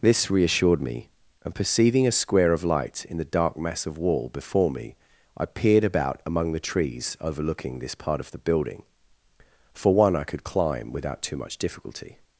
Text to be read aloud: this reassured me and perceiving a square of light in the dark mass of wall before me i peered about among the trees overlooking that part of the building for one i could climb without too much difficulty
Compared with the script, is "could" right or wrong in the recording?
right